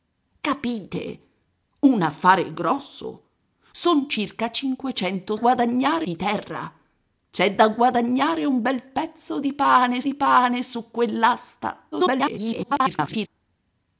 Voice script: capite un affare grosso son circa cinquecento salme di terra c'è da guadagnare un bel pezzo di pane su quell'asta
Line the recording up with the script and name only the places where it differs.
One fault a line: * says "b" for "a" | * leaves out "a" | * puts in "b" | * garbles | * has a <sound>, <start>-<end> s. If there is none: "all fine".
* says "guadagnare" for "salme"
* puts in "di pane"
* garbles